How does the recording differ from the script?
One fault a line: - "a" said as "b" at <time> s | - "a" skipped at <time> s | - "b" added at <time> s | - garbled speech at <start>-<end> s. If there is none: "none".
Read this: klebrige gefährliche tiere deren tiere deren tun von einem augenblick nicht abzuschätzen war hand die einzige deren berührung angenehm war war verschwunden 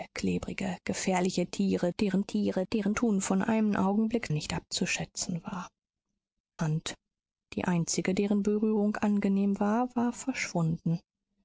none